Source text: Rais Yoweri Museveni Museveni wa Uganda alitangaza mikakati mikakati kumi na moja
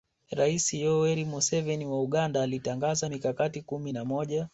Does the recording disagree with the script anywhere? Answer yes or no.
yes